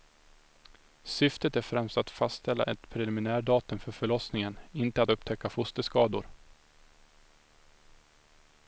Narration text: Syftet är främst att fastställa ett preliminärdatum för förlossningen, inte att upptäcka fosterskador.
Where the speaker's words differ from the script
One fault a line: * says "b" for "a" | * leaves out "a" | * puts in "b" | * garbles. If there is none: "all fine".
all fine